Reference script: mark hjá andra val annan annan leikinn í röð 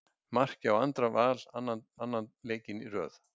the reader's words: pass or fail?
pass